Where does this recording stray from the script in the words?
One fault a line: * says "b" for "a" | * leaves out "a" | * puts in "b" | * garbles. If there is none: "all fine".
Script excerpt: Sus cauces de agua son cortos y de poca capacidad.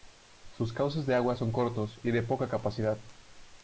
all fine